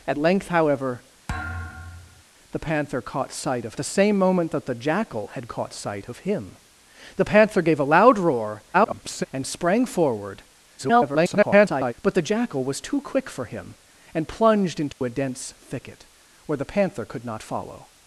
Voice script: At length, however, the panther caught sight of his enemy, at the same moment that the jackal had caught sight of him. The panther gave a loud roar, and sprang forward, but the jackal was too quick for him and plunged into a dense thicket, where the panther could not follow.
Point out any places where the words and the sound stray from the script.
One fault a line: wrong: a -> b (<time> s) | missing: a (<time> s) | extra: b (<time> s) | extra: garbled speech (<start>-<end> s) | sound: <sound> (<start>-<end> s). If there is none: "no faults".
sound: thud (1.3-2.2 s)
missing: his enemy at (3.7 s)
extra: garbled speech (8.7-9.3 s)
extra: garbled speech (10.8-11.9 s)
sound: dropout (14.9-15.0 s)